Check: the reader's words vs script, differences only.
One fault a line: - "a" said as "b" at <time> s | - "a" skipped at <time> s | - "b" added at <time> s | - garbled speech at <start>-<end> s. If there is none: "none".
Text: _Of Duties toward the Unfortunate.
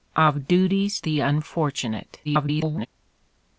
- "toward" skipped at 1.0 s
- garbled speech at 2.2-2.9 s